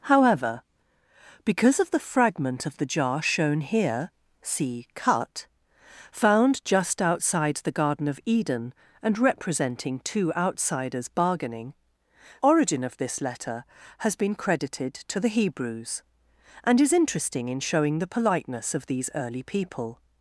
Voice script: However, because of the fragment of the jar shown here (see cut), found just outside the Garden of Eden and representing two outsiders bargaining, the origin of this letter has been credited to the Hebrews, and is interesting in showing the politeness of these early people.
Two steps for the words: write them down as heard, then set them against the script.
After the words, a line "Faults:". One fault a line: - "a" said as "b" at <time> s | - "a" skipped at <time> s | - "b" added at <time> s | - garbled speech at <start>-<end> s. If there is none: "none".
However, because of the fragment of the jar shown here (see cut), found just outside the Garden of Eden and representing two outsiders bargaining, origin of this letter has been credited to the Hebrews, and is interesting in showing the politeness of these early people.
Faults:
- "the" skipped at 11.8 s